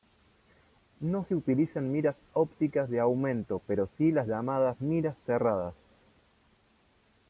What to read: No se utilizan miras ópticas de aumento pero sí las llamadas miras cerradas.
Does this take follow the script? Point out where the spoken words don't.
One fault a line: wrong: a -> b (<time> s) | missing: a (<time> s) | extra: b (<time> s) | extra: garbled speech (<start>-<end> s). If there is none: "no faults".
no faults